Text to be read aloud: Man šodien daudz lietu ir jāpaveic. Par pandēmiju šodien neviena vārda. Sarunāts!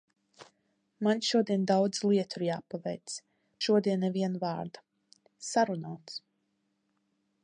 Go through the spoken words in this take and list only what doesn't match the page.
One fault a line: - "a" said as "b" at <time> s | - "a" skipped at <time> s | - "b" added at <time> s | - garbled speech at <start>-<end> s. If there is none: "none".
- "Par pandēmiju" skipped at 3.2 s